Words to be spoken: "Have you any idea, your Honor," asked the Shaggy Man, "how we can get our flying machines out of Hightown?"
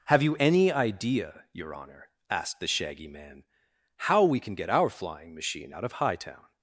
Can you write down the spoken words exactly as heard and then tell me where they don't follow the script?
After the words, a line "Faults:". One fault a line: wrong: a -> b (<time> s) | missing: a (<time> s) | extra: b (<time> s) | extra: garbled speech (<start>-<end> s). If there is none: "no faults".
"Have you any idea, your Honor," asked the Shaggy Man, "how we can get our flying machine out of Hightown?"
Faults:
wrong: machines -> machine (5.3 s)